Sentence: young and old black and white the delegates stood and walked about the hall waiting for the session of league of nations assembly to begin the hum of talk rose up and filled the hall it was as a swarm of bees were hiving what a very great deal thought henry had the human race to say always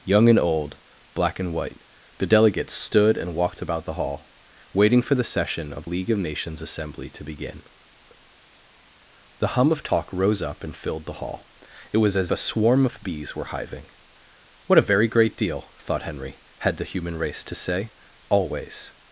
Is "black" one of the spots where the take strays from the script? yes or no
no